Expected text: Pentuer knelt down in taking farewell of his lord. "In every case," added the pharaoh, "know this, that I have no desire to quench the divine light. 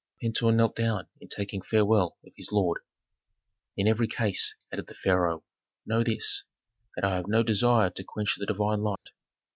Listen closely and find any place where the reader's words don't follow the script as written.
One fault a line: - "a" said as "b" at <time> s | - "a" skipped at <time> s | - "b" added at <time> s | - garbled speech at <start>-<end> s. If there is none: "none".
none